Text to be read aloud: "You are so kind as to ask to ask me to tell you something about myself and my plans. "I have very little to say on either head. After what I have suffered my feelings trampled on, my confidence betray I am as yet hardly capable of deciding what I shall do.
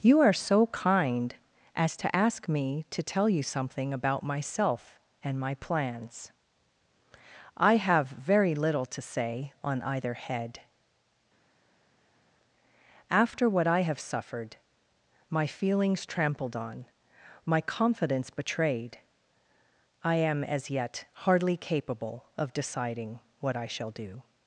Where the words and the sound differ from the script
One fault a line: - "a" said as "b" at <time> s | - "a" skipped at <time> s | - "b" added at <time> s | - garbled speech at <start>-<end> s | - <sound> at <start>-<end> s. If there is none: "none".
- "to ask" skipped at 2.5 s
- "betray" said as "betrayed" at 18.3 s